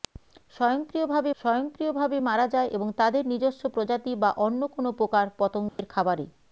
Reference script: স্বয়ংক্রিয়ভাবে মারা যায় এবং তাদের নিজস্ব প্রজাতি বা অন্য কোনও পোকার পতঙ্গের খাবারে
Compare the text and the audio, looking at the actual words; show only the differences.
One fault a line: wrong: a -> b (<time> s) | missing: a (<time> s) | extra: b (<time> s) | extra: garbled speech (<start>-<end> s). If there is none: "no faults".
extra: স্বয়ংক্রিয়ভাবে (1.4 s)